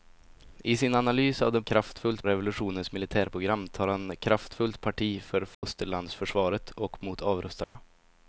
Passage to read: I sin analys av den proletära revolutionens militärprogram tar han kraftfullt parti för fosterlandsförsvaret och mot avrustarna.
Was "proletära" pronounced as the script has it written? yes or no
no